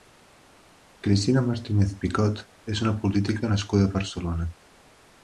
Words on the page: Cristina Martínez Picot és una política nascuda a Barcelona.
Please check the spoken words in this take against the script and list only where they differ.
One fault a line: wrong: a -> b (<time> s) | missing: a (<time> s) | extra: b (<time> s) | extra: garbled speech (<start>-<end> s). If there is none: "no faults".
no faults